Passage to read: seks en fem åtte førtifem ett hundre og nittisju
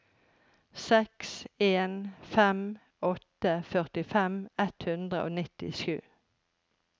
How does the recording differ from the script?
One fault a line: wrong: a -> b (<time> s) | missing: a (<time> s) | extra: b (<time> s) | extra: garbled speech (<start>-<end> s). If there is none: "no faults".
no faults